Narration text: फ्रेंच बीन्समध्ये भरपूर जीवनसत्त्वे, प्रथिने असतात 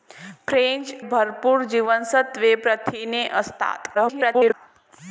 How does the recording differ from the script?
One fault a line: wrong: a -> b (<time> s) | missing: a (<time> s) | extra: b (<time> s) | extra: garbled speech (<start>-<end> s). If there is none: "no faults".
missing: बीन्समध्ये (0.9 s)
extra: garbled speech (3.9-4.5 s)